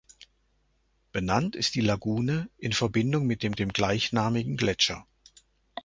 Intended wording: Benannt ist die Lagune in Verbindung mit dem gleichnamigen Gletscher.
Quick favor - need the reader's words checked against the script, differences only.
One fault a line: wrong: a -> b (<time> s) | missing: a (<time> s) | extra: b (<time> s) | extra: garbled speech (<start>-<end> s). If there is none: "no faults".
extra: dem (3.6 s)